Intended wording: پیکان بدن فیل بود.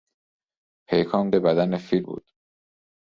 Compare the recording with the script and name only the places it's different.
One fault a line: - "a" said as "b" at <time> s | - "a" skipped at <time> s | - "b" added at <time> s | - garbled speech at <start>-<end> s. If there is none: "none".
none